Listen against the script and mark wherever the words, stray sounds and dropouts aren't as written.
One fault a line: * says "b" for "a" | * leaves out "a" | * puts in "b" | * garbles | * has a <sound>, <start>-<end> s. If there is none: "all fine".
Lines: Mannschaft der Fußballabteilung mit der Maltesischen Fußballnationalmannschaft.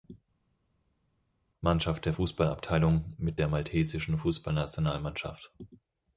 all fine